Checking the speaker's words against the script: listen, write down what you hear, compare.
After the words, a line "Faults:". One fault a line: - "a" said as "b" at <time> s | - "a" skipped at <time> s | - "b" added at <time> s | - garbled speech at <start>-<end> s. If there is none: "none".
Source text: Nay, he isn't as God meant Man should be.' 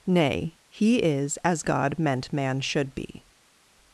Nay, he is as God meant Man should be.'
Faults:
- "isn't" said as "is" at 1.0 s